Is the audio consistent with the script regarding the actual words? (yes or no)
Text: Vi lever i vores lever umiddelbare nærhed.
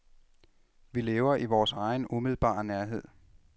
no